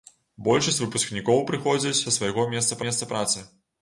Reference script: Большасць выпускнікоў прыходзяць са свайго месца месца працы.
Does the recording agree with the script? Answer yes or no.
yes